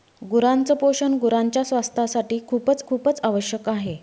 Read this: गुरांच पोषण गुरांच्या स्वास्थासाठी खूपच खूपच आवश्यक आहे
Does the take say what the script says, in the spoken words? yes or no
yes